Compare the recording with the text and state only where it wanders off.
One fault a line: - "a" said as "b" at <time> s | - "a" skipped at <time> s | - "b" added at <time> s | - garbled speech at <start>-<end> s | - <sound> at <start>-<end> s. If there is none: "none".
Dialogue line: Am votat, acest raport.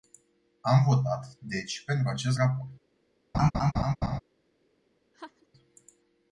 - "deci pentru" added at 1.4 s
- laugh at 3.3-4.2 s
- laugh at 5.1-5.5 s